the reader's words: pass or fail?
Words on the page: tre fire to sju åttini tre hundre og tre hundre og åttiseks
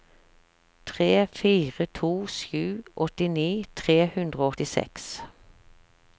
fail